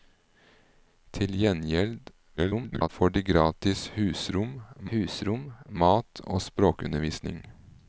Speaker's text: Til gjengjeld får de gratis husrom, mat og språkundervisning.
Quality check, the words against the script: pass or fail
fail